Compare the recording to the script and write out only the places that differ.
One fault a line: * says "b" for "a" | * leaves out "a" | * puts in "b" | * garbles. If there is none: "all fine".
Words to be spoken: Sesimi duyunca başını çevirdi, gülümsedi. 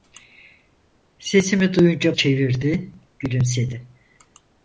* leaves out "başını"